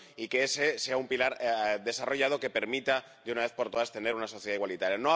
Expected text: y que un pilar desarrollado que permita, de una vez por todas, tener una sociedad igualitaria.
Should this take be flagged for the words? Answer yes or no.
yes